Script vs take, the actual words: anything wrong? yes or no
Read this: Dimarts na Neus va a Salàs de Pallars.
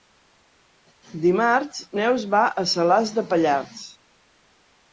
yes